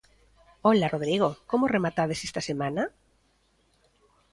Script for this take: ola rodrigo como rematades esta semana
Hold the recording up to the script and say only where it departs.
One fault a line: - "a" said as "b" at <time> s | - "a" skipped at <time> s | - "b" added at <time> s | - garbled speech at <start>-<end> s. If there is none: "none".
none